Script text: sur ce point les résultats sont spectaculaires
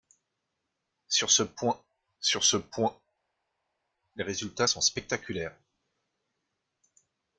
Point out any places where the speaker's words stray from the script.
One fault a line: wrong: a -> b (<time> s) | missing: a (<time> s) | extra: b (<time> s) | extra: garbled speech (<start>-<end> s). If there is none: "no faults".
extra: sur ce point (2.2 s)